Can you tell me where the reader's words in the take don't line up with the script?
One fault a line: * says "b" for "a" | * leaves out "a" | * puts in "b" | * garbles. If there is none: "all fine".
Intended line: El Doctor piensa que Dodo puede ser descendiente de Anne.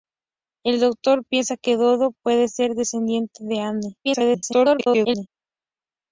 * garbles